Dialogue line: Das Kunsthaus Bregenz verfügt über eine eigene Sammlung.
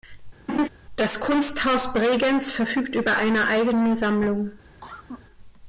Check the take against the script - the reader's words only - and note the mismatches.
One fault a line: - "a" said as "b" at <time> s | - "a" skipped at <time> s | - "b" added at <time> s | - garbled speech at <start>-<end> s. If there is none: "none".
none